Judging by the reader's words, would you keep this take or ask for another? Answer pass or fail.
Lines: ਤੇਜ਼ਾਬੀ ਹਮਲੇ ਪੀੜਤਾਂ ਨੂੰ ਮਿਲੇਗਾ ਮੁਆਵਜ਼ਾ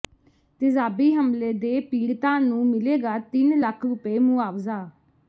fail